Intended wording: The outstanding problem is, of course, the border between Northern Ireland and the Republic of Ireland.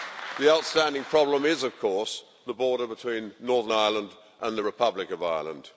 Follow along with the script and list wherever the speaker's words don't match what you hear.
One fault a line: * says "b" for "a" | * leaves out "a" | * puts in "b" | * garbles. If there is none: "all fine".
all fine